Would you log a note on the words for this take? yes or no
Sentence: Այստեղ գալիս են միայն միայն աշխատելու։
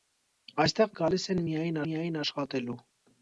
no